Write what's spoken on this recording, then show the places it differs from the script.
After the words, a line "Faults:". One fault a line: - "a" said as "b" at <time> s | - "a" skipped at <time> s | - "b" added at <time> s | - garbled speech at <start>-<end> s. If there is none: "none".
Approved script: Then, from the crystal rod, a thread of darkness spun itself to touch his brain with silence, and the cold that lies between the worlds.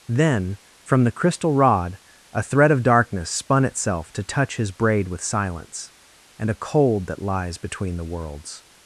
Then, from the crystal rod, a thread of darkness spun itself to touch his braid with silence, and a cold that lies between the worlds.
Faults:
- "brain" said as "braid" at 4.7 s
- "the" said as "a" at 6.5 s